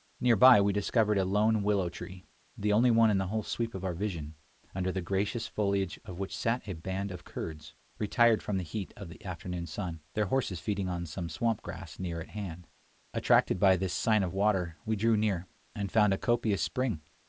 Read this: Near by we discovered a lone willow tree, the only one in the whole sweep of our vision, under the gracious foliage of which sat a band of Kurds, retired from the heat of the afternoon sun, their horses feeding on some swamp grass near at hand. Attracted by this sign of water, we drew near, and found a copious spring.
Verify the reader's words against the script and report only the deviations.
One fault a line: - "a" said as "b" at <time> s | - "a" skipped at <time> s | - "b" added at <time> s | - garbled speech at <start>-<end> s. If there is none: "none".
none